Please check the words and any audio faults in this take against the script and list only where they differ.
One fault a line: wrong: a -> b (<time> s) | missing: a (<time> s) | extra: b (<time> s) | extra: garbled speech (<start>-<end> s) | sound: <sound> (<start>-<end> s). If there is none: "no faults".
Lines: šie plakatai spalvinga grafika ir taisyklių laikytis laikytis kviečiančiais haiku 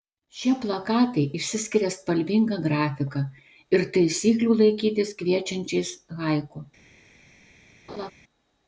extra: išsiskiria (1.4 s)
missing: laikytis (5.1 s)
sound: laugh (7.9-8.1 s)